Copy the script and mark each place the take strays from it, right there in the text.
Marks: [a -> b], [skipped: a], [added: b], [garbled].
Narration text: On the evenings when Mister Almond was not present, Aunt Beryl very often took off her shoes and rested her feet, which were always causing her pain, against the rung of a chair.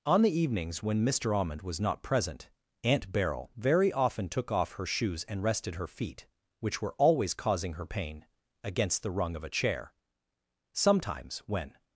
On the evenings when Mister Almond was not present, Aunt Beryl very often took off her shoes and rested her feet, which were always causing her pain, against the rung of a chair. [added: Sometimes when]